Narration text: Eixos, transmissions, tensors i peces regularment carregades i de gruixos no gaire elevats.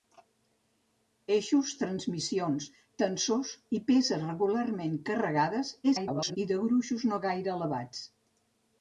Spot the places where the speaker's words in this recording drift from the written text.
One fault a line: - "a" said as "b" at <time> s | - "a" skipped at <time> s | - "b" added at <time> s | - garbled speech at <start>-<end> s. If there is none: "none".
- garbled speech at 5.8-6.4 s